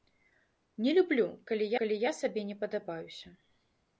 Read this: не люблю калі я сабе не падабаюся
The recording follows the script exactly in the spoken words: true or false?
false